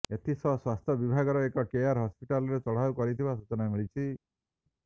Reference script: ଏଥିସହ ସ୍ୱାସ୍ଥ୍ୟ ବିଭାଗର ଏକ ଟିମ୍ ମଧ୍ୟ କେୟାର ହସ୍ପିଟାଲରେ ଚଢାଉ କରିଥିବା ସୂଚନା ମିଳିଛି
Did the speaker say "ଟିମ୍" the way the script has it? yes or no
no